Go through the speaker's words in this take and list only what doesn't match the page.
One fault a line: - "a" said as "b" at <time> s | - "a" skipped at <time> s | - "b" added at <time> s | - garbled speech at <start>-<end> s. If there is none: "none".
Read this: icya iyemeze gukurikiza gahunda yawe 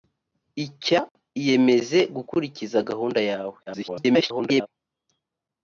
- garbled speech at 3.7-4.7 s